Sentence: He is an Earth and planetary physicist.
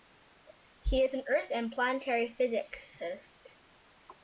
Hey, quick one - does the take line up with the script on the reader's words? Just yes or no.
yes